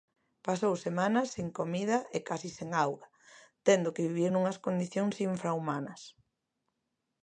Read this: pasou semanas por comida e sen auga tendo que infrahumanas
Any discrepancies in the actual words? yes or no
yes